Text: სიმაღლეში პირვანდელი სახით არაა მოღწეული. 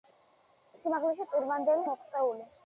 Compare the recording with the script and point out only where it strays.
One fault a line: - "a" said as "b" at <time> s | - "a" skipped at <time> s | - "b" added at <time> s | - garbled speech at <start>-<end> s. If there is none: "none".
- "სახით არაა" skipped at 1.8 s